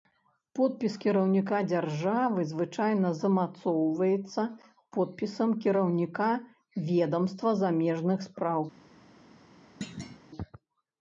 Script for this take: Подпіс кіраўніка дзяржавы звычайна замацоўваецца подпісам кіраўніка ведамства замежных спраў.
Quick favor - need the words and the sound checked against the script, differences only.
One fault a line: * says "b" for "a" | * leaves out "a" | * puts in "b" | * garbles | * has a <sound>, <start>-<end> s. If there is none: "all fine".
* has a thud, 9.8-10.2 s